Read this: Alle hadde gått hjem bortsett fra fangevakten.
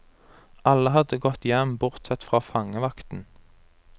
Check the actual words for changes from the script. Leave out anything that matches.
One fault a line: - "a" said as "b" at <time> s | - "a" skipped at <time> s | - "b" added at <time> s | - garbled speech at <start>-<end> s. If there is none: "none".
none